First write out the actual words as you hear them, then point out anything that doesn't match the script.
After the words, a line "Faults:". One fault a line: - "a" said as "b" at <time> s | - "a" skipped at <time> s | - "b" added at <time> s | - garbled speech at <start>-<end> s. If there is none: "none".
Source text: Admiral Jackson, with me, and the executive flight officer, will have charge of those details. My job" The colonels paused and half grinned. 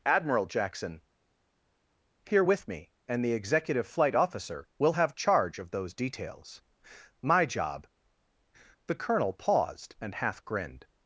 Admiral Jackson, here with me, and the executive flight officer, will have charge of those details. My job" The colonel paused and half grinned.
Faults:
- "here" added at 2.3 s
- "colonels" said as "colonel" at 9.0 s